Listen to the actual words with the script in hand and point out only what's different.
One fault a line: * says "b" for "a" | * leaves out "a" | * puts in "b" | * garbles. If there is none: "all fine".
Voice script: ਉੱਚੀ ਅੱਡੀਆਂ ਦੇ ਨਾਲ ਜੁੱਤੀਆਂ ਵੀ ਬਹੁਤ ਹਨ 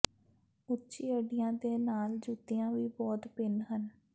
* puts in "ਭਿੰਨ"